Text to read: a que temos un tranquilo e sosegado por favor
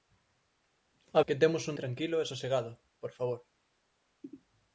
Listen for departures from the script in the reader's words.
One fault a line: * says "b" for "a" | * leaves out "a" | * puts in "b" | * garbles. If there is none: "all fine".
all fine